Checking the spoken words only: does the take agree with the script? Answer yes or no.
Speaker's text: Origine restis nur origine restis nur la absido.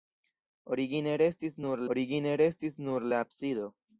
yes